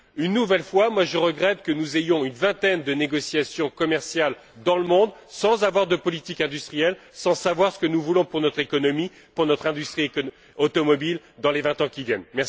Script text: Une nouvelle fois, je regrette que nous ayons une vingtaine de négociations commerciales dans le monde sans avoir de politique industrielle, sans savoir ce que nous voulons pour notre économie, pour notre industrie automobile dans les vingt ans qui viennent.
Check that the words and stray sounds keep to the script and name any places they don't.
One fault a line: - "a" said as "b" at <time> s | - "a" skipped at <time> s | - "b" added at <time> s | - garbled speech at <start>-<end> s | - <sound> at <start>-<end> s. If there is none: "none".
none